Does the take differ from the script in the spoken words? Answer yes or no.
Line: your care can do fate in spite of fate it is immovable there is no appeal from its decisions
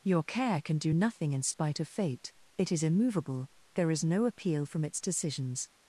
yes